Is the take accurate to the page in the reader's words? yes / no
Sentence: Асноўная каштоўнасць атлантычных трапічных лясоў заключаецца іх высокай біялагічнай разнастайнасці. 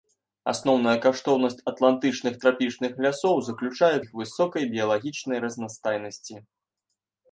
yes